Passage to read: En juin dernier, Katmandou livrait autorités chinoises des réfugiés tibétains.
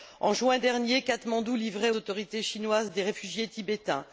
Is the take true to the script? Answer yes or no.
yes